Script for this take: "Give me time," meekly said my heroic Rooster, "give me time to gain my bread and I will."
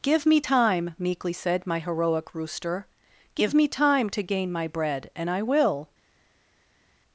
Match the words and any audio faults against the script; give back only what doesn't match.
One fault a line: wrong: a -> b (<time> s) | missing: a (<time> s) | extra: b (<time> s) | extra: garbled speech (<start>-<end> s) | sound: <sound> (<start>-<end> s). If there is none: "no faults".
no faults